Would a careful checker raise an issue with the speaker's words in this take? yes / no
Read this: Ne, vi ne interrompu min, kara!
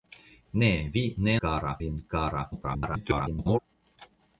yes